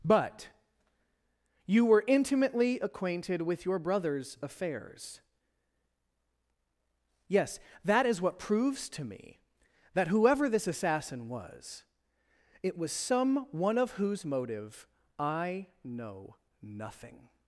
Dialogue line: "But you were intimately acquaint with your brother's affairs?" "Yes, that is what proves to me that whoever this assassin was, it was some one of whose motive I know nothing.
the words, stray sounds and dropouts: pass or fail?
fail